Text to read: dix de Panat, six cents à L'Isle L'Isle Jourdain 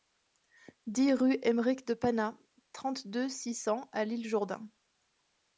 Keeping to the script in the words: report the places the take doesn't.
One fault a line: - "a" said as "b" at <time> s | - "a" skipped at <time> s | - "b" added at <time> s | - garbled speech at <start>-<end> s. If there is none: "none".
- "rue Aymeric" added at 1.1 s
- "trente deux" added at 2.7 s
- "L'Isle" skipped at 4.3 s